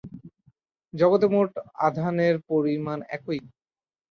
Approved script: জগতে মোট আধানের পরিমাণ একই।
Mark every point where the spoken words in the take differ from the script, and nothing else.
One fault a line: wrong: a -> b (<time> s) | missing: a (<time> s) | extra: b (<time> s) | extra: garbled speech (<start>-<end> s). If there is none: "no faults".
no faults